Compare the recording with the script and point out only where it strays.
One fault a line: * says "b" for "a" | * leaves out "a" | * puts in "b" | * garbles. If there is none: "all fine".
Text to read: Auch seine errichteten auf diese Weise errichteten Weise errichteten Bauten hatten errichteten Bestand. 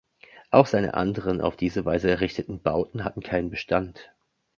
* says "anderen" for "errichteten"
* leaves out "Weise errichteten"
* says "keinen" for "errichteten"